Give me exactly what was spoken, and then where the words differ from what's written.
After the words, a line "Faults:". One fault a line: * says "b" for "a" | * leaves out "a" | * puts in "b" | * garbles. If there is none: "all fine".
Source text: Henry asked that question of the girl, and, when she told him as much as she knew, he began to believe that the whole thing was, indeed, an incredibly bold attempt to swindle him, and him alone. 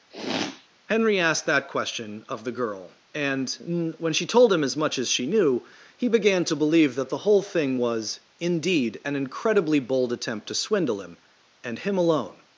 Henry asked that question of the girl, and, when she told him as much as she knew, he began to believe that the whole thing was, indeed, an incredibly bold attempt to swindle him, and him alone.
Faults:
all fine